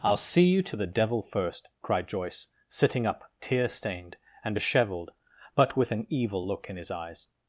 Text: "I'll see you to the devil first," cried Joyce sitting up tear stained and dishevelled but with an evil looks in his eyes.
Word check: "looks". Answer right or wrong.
wrong